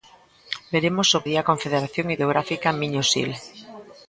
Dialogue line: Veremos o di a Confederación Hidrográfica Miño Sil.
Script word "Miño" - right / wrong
right